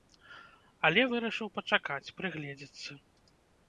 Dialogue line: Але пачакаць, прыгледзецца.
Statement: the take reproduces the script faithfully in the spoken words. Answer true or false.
false